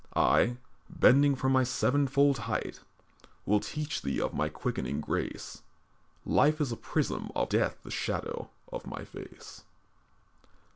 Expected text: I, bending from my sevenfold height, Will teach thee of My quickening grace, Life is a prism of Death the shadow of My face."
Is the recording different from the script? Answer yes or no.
no